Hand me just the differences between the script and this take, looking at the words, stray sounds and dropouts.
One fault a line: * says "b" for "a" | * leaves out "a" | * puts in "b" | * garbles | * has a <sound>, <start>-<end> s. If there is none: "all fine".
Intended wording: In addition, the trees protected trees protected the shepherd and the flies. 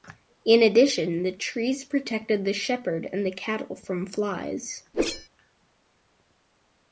* leaves out "trees protected"
* puts in "cattle from"
* has a whoosh, 4.9-5.3 s